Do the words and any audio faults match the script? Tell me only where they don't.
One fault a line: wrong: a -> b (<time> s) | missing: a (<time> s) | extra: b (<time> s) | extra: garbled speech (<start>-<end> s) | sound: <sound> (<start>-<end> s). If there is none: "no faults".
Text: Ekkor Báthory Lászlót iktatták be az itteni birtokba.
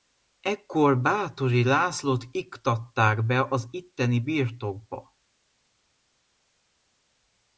no faults